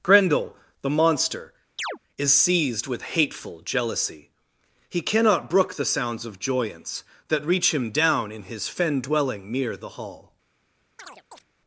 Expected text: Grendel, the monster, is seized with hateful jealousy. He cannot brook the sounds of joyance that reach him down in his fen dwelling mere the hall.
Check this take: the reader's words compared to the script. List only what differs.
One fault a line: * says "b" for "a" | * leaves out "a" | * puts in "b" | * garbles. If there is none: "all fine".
all fine